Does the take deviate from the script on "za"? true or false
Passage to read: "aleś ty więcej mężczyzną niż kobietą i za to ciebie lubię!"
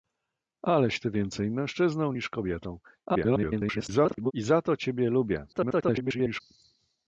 false